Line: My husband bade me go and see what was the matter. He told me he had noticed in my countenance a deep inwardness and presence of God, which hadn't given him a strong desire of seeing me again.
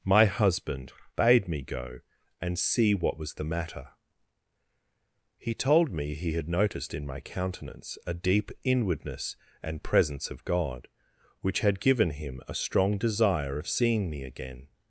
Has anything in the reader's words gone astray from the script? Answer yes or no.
yes